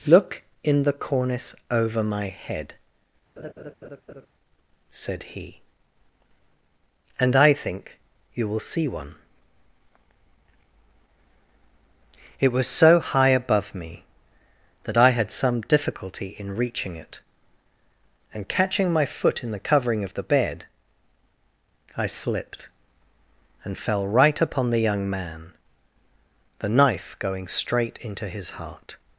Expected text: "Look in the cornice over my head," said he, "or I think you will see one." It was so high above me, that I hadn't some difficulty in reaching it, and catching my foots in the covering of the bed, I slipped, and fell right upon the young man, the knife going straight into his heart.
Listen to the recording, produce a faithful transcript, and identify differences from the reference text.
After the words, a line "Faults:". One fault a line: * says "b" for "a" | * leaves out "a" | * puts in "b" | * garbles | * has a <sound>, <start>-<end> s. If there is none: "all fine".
"Look in the cornice over my head," said he, "and I think you will see one." It was so high above me, that I had some difficulty in reaching it, and catching my foot in the covering of the bed, I slipped, and fell right upon the young man, the knife going straight into his heart.
Faults:
* has a laugh, 3.4-4.3 s
* says "and" for "or"
* says "had" for "hadn't"
* says "foot" for "foots"